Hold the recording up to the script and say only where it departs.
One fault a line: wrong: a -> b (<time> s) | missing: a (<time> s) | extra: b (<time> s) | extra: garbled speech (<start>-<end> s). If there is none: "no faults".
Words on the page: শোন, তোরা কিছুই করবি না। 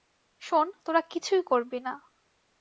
no faults